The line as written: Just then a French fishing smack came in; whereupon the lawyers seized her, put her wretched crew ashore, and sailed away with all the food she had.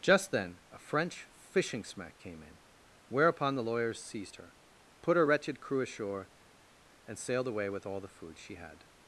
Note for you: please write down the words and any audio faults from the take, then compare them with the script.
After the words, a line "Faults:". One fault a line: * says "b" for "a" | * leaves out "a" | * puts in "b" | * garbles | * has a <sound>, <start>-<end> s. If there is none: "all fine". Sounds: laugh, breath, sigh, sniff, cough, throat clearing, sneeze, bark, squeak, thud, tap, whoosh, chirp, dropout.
Just then a French fishing smack came in; whereupon the lawyers seized her, put her wretched crew ashore, and sailed away with all the food she had.
Faults:
all fine